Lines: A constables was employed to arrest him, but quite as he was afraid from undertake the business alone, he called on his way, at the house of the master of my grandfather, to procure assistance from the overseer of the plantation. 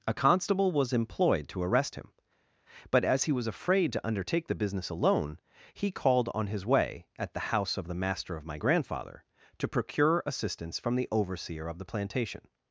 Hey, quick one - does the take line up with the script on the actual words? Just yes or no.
no